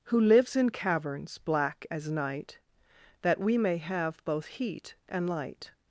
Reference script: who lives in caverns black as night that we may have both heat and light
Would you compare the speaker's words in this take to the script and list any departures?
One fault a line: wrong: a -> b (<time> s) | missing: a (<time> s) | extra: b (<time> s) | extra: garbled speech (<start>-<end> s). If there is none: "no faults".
no faults